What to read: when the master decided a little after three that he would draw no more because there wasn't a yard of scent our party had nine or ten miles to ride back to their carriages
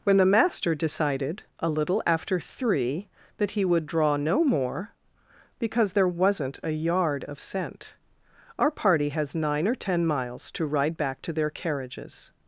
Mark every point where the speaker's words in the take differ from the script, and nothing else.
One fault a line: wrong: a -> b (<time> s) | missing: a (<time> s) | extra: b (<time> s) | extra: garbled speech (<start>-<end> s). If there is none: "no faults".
wrong: had -> has (9.1 s)